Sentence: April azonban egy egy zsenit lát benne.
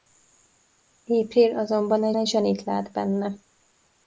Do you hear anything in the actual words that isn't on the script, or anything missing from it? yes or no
no